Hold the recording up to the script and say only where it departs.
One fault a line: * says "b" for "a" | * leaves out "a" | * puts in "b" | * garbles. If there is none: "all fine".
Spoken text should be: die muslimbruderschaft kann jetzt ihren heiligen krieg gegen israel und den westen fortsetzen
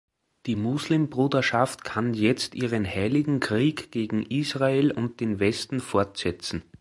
all fine